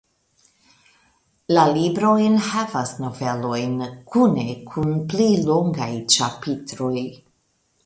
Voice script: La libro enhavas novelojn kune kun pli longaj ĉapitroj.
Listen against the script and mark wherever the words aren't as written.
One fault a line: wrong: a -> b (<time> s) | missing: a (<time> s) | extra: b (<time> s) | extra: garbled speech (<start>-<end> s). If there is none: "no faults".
no faults